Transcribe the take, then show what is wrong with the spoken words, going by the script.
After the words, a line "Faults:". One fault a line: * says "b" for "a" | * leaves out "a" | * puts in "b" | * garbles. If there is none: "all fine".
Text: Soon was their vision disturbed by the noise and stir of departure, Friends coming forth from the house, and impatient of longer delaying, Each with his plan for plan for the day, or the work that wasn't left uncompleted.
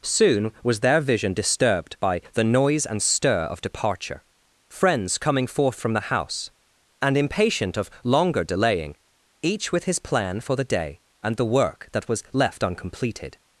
Soon was their vision disturbed by the noise and stir of departure, Friends coming forth from the house, and impatient of longer delaying, Each with his plan for the day, and the work that was left uncompleted.
Faults:
* leaves out "plan for"
* says "and" for "or"
* says "was" for "wasn't"